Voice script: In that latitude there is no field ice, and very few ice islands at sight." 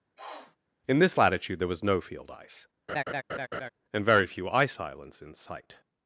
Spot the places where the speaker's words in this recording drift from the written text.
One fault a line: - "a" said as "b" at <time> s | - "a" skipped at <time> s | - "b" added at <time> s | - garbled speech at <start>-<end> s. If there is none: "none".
- "that" said as "this" at 1.0 s
- "is" said as "was" at 1.7 s
- "at" said as "in" at 5.2 s